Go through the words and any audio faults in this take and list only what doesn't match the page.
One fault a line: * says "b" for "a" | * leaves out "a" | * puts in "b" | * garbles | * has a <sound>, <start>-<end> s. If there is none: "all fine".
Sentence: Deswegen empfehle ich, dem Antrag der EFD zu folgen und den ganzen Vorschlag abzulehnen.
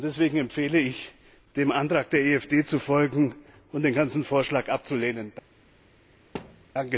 * has a thud, 6.3-6.7 s